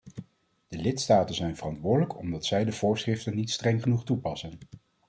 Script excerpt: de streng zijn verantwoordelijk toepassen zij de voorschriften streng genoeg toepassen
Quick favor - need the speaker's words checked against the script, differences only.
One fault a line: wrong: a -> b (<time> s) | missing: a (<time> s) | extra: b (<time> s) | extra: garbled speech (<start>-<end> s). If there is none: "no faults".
wrong: streng -> lidstaten (0.8 s)
wrong: toepassen -> omdat (2.2 s)
extra: niet (3.4 s)